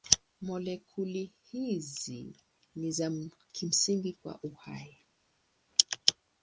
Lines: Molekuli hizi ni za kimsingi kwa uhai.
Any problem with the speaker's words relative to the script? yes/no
no